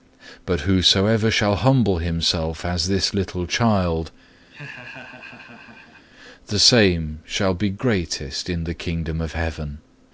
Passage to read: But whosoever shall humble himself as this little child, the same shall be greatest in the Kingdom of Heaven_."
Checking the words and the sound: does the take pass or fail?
fail